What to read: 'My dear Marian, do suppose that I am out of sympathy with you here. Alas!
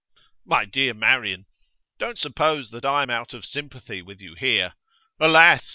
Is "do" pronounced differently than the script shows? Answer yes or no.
yes